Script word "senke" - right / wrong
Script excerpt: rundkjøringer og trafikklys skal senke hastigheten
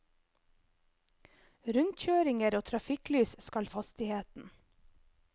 wrong